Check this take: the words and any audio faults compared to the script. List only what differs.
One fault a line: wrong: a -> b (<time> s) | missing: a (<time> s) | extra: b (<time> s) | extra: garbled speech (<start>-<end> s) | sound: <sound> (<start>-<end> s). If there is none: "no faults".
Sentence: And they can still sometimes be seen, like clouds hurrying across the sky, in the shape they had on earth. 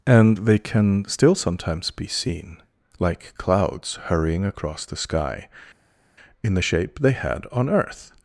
no faults